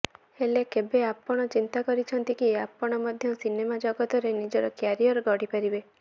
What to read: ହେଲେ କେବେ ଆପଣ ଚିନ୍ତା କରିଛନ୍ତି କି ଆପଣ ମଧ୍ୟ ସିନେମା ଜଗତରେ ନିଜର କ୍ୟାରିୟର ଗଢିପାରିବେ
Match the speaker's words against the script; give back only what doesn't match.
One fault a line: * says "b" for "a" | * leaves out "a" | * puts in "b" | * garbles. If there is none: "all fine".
all fine